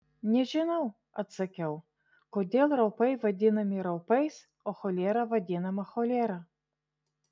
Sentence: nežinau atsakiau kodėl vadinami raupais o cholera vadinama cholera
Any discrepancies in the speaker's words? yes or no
yes